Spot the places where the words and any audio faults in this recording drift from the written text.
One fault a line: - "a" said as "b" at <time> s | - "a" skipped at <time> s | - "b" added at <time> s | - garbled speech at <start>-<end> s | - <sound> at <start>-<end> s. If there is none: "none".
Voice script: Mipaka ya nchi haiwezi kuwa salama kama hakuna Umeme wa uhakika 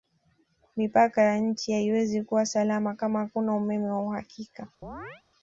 - chirp at 4.8-5.2 s